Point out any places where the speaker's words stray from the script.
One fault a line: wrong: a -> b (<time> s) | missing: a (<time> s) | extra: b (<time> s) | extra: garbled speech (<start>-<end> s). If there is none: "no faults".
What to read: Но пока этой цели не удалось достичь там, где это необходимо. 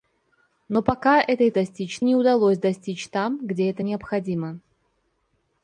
wrong: цели -> достичь (1.5 s)